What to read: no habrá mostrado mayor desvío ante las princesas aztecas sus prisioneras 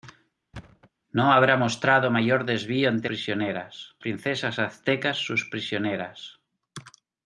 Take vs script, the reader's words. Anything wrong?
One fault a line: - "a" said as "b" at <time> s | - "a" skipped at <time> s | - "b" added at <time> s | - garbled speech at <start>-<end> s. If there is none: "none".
- "las" said as "prisioneras" at 3.1 s